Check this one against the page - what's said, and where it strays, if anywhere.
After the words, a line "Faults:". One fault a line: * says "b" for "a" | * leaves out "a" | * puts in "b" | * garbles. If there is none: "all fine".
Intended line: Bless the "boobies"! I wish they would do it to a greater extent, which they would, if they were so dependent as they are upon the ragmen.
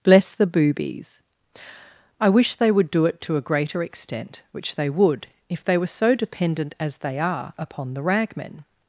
Bless the "boobies"! I wish they would do it to a greater extent, which they would, if they were so dependent as they are upon the ragmen.
Faults:
all fine